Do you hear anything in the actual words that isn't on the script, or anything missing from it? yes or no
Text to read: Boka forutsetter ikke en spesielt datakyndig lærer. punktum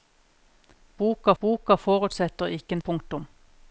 yes